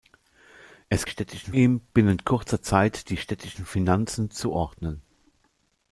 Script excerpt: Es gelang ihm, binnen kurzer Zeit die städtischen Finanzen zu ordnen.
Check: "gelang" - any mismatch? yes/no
yes